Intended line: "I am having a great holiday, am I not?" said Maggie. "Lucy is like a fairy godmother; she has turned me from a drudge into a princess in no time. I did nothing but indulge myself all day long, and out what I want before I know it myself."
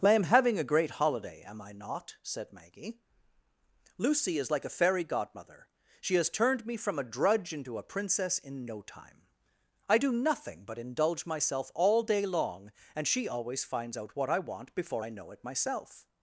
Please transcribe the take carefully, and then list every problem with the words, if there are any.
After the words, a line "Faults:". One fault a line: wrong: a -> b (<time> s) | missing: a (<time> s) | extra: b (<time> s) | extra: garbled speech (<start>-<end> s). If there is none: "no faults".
"I am having a great holiday, am I not?" said Maggie. "Lucy is like a fairy godmother; she has turned me from a drudge into a princess in no time. I do nothing but indulge myself all day long, and she always finds out what I want before I know it myself."
Faults:
wrong: did -> do (10.0 s)
extra: she always finds (13.1 s)